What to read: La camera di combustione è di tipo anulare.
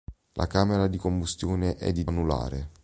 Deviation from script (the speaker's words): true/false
true